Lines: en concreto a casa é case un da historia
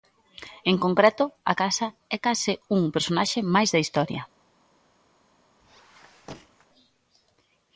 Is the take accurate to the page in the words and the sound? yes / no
no